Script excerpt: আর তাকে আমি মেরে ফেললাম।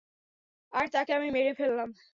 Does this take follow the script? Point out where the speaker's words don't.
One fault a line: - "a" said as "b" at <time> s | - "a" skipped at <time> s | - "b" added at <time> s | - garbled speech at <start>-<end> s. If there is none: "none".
none